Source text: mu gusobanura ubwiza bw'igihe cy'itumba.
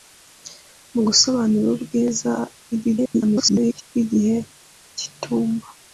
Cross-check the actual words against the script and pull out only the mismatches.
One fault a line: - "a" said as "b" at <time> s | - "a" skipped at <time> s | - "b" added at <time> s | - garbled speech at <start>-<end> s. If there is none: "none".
- garbled speech at 2.7-3.8 s